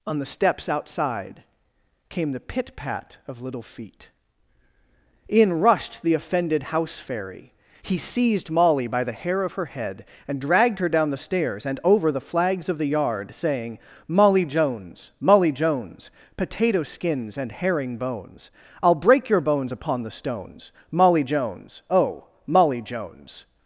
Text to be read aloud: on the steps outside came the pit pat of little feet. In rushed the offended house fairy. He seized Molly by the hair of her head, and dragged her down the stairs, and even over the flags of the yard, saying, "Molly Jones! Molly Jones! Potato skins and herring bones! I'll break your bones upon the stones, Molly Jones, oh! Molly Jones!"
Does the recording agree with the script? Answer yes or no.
no